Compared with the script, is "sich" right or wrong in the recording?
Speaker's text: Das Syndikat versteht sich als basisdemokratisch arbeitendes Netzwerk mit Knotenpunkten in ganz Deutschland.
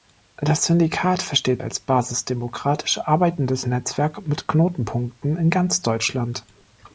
wrong